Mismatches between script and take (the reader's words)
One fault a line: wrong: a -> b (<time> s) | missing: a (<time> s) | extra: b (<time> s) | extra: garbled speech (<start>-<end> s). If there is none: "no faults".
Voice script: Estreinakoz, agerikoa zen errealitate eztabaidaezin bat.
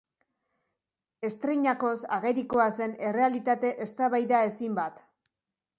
no faults